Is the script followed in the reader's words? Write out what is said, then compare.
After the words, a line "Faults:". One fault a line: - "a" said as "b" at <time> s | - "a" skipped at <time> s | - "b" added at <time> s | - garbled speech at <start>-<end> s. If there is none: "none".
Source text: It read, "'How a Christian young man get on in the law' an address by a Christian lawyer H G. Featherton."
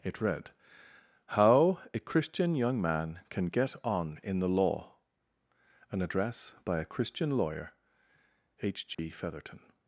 It read, "'How a Christian young man can get on in the law' an address by a Christian lawyer H G. Featherton."
Faults:
- "can" added at 3.3 s